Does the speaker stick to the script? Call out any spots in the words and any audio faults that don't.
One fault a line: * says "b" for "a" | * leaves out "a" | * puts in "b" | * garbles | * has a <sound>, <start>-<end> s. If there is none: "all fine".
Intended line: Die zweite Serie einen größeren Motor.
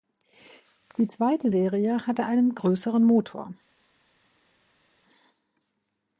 * puts in "hatte"